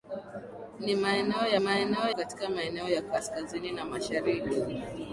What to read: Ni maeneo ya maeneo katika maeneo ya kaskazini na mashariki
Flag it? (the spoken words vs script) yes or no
no